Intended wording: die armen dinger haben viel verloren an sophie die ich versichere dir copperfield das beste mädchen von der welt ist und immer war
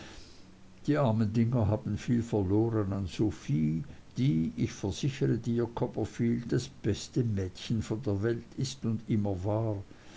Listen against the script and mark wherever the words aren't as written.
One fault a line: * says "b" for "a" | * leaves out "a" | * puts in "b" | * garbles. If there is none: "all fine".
all fine